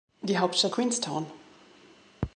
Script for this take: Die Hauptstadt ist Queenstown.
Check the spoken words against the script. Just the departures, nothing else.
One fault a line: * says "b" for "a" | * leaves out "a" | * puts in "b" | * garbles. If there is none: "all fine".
* leaves out "ist"